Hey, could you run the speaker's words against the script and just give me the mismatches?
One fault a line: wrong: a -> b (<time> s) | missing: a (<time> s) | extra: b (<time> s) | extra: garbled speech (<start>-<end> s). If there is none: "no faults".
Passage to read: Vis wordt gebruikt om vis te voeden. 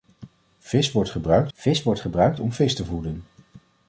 extra: vis wordt gebruikt (1.5 s)